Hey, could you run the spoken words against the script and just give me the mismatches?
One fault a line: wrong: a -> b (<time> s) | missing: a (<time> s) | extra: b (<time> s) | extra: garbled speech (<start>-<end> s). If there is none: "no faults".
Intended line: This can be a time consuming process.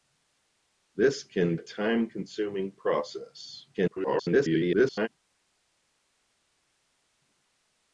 missing: be (1.6 s)
extra: garbled speech (3.7-5.1 s)